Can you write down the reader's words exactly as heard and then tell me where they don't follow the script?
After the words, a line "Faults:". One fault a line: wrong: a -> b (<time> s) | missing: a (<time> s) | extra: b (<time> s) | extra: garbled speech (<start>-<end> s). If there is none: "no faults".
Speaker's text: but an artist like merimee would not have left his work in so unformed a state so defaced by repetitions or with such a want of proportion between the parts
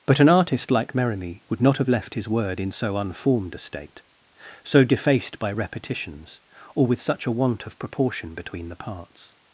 but an artist like merimee would not have left his word in so unformed a state so defaced by repetitions or with such a want of proportion between the parts
Faults:
wrong: work -> word (2.3 s)